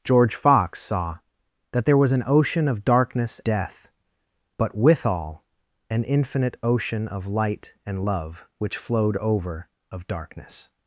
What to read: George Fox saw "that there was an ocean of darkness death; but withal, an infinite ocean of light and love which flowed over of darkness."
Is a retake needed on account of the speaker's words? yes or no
no